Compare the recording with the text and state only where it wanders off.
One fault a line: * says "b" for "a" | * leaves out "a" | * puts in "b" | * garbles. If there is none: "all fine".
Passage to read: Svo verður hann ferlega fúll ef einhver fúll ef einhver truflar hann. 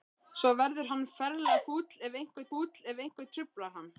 all fine